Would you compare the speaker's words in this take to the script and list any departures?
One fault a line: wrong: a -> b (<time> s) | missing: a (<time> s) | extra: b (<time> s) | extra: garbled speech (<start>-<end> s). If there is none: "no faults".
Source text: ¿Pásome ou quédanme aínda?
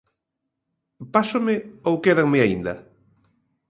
no faults